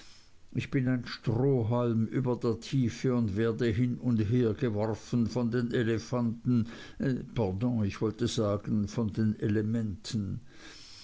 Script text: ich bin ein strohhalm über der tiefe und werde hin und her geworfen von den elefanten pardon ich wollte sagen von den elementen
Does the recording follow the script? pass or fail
pass